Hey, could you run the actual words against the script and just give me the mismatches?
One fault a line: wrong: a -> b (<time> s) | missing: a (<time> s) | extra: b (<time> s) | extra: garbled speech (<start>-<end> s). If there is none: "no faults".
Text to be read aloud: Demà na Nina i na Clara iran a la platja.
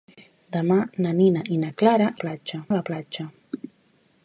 wrong: iran -> platja (2.2 s)